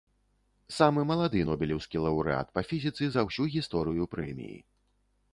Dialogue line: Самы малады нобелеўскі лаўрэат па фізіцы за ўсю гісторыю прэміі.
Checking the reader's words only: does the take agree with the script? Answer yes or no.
yes